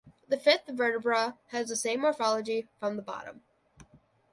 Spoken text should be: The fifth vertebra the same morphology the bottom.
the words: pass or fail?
fail